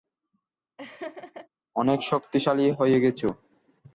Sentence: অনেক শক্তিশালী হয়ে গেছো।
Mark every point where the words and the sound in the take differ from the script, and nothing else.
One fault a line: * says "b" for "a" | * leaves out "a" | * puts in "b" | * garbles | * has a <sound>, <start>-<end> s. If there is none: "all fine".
* has a laugh, 0.8-1.5 s